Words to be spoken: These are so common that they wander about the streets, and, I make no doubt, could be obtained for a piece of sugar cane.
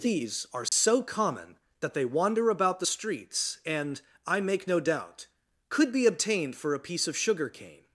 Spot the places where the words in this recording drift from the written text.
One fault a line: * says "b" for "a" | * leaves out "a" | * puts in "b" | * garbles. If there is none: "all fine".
all fine